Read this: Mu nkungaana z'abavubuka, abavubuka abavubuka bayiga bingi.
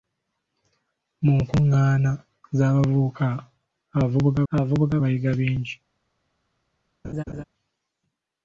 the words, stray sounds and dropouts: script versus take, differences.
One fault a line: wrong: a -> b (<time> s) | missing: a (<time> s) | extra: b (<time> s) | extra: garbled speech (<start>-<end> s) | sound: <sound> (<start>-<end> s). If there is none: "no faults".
sound: laugh (7.0-7.4 s)